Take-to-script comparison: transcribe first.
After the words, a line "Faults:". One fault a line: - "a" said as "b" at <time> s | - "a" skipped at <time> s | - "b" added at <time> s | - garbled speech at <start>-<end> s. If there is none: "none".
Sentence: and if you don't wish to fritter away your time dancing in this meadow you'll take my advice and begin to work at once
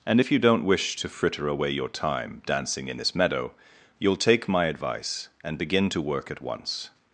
and if you don't wish to fritter away your time dancing in this meadow you'll take my advice and begin to work at once
Faults:
none